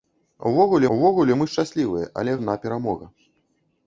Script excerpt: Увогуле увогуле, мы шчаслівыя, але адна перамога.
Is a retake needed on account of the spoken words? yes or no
no